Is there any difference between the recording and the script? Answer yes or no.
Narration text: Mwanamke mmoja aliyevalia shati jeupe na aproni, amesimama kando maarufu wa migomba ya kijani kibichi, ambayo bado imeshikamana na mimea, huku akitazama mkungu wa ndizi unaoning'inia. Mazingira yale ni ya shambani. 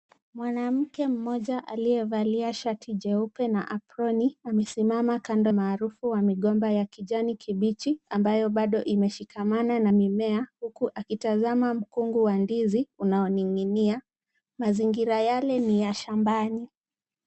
no